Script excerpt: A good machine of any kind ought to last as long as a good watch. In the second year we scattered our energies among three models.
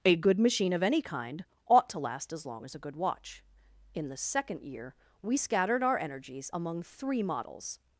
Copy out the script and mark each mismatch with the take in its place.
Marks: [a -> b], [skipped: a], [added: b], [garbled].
A good machine of any kind ought to last as long as a good watch. In the second year we scattered our energies among three models.